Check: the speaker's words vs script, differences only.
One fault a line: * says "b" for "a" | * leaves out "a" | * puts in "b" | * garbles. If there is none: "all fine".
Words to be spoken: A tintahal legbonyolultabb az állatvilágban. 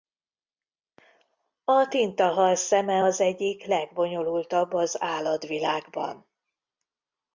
* puts in "szeme az egyik"